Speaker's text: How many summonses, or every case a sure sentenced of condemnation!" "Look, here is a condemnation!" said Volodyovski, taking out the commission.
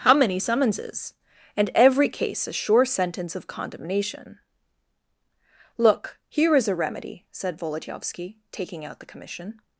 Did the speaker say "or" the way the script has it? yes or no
no